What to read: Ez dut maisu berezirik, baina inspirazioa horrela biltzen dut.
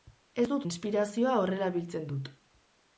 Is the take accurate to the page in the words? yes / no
no